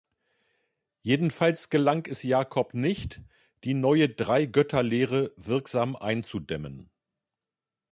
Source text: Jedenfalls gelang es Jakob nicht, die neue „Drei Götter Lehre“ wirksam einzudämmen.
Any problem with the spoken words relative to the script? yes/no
no